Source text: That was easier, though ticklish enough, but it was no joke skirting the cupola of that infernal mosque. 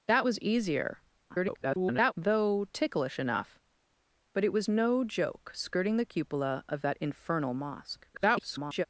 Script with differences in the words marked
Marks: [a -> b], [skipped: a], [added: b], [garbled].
That was easier, [garbled] though ticklish enough, but it was no joke skirting the cupola of that infernal mosque. [garbled]